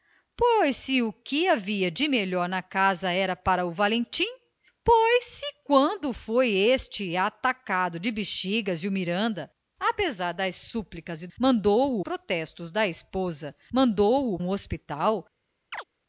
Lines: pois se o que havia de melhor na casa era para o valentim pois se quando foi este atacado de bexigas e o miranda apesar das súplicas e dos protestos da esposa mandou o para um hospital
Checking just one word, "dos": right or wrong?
wrong